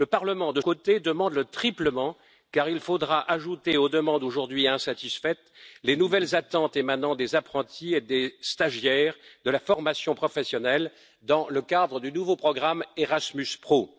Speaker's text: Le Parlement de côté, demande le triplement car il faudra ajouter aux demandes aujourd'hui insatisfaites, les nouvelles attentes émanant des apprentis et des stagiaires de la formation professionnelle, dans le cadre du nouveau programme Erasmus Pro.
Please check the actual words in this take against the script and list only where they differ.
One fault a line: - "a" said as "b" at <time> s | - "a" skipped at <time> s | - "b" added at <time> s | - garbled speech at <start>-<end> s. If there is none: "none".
none